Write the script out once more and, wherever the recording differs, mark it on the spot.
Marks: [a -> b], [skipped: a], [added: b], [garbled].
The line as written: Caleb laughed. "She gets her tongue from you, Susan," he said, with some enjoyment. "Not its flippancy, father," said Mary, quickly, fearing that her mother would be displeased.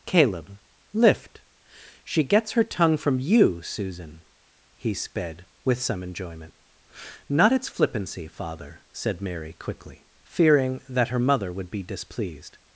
Caleb [laughed. -> lift] "She gets her tongue from you, Susan," he [said, -> sped] with some enjoyment. "Not its flippancy, father," said Mary, quickly, fearing that her mother would be displeased.